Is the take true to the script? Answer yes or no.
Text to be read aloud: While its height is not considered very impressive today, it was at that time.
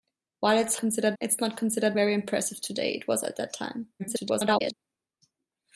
no